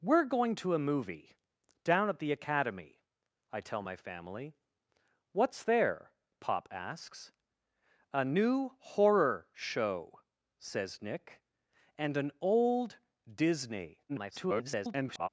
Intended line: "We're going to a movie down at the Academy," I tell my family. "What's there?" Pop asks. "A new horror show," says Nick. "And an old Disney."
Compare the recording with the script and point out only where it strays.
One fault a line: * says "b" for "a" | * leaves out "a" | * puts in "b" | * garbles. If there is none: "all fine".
* garbles